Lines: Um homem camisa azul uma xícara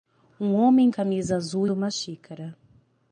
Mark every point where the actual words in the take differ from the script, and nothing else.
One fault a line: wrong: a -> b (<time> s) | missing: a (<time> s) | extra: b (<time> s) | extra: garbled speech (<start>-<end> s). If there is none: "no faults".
no faults